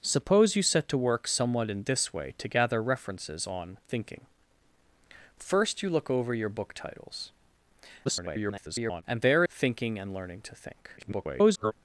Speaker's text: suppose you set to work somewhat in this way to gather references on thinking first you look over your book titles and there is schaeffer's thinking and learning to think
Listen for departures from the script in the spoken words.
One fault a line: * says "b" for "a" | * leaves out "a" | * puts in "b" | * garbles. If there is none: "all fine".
* garbles
* leaves out "is schaeffer's"
* garbles